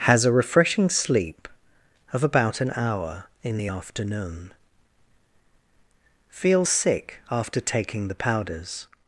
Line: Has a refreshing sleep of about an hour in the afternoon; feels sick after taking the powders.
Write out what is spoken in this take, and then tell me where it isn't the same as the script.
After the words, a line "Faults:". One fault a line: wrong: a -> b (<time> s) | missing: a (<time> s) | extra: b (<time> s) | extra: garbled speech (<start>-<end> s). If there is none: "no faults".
Has a refreshing sleep of about an hour in the afternoon; feels sick after taking the powders.
Faults:
no faults